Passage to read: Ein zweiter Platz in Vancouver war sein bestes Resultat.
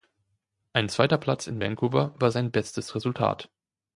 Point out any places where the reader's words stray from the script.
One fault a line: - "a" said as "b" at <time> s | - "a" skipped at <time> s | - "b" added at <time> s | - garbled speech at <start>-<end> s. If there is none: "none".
none